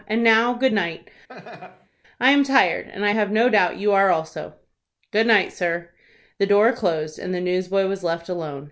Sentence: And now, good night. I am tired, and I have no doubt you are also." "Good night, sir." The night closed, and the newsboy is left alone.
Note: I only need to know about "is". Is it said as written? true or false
false